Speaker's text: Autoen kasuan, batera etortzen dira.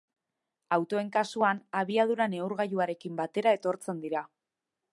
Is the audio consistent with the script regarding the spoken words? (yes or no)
no